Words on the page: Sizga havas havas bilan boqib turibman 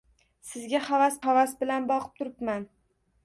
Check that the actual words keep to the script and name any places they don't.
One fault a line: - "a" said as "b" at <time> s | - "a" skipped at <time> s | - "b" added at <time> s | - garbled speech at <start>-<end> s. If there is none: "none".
none